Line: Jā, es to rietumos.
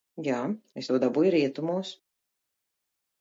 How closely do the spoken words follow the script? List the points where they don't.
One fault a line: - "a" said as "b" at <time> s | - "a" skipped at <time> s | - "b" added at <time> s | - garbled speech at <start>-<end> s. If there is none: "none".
- "dabūju" added at 1.0 s